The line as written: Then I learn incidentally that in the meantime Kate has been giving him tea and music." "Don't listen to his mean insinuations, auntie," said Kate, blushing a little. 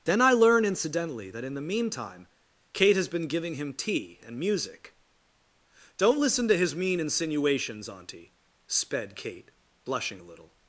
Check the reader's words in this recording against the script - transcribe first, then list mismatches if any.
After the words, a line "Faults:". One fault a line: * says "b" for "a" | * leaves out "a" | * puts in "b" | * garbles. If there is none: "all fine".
Then I learn incidentally that in the meantime Kate has been giving him tea and music." "Don't listen to his mean insinuations, auntie," sped Kate, blushing a little.
Faults:
* says "sped" for "said"